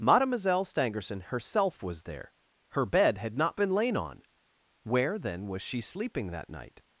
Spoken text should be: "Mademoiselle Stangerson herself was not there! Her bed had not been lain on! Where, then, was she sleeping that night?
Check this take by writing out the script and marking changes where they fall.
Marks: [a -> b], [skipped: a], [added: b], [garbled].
"Mademoiselle Stangerson herself was [skipped: not] there! Her bed had not been lain on! Where, then, was she sleeping that night?